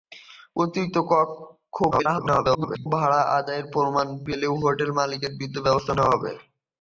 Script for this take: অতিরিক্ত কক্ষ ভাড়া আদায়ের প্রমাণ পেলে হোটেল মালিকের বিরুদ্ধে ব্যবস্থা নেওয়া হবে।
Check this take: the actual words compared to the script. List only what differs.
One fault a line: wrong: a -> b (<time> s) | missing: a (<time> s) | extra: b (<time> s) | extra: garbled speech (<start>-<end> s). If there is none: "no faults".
extra: garbled speech (1.9-2.9 s)